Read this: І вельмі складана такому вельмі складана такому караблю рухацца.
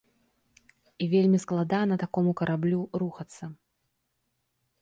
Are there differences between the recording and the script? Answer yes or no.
yes